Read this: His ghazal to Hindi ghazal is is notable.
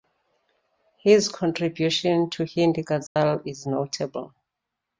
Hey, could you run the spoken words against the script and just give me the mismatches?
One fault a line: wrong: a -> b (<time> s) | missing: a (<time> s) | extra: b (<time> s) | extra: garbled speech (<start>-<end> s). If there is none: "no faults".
wrong: ghazal -> contribution (1.3 s)
missing: is (3.7 s)